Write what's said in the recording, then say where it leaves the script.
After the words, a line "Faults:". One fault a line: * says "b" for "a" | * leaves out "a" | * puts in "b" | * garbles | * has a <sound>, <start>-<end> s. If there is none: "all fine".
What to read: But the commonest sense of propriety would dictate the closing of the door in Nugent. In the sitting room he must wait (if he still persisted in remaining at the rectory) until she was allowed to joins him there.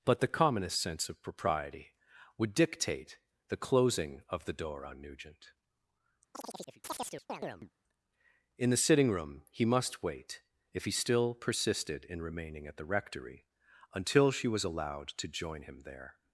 But the commonest sense of propriety would dictate the closing of the door on Nugent. In the sitting room he must wait (if he still persisted in remaining at the rectory) until she was allowed to join him there.
Faults:
* says "on" for "in"
* has a chirp, 6.3-7.7 s
* says "join" for "joins"